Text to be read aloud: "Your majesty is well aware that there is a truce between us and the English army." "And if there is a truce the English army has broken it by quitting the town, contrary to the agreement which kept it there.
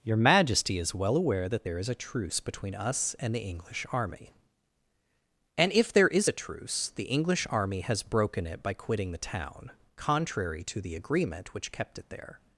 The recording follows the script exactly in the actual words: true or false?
true